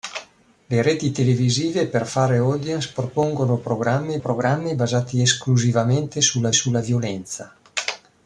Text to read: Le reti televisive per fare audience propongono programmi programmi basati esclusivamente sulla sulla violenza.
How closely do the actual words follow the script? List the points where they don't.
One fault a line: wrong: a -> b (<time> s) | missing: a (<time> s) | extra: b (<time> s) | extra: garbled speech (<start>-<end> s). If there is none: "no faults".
no faults